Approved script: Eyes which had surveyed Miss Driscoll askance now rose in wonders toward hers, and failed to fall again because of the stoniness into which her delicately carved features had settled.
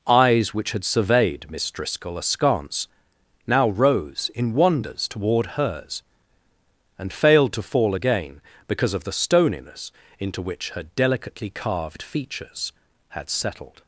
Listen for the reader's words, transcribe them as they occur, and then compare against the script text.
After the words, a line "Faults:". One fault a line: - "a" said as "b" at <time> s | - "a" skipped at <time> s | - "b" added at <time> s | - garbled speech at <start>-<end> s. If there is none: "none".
Eyes which had surveyed Miss Driscoll askance now rose in wonders toward hers, and failed to fall again because of the stoniness into which her delicately carved features had settled.
Faults:
none